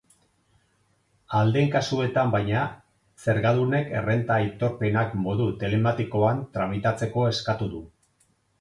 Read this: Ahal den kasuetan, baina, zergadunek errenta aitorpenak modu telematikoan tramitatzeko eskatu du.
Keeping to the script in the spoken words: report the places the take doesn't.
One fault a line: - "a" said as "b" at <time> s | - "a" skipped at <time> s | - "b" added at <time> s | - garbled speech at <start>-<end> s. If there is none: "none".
none